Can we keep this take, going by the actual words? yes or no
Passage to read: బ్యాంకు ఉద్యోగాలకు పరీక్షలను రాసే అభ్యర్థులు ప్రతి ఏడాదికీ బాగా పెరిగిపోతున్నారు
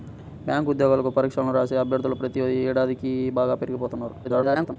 no